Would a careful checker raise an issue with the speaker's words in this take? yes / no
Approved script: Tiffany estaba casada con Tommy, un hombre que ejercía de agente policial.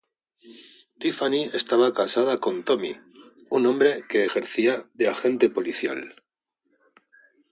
no